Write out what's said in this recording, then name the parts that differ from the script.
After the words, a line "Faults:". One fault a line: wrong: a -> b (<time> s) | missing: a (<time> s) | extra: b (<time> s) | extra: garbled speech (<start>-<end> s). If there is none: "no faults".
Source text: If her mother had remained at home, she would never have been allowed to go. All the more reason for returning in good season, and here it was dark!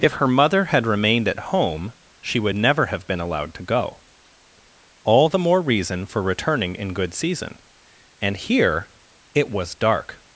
If her mother had remained at home, she would never have been allowed to go. All the more reason for returning in good season, and here it was dark!
Faults:
no faults